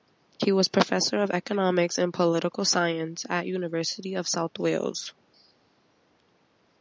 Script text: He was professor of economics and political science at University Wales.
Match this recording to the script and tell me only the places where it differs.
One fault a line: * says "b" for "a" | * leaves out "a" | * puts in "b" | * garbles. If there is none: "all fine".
* puts in "of South"